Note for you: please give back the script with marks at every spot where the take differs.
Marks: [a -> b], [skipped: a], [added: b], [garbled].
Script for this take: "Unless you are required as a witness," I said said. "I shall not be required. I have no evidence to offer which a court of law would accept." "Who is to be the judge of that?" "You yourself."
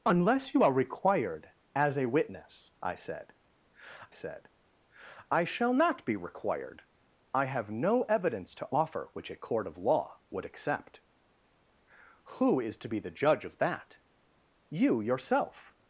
"Unless you are required as a witness," I said said. "I shall not be required. I have no evidence to offer which a court of law would accept." "Who is to be the judge of that?" "You yourself."